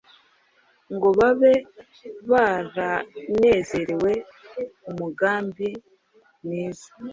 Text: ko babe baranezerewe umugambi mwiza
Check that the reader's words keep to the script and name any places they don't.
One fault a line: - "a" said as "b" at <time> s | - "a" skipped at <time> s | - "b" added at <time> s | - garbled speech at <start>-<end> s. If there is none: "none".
- "ko" said as "ngo" at 0.9 s